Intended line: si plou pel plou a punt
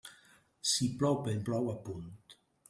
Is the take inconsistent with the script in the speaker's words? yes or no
no